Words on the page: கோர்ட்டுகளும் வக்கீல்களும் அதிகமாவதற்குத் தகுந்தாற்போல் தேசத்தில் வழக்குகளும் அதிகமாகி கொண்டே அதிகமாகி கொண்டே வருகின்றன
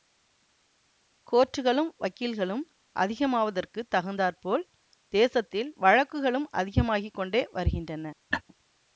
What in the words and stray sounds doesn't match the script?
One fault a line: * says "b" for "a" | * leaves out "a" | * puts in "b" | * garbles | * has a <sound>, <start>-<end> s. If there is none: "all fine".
* leaves out "அதிகமாகி கொண்டே"
* has a laugh, 8.3-8.4 s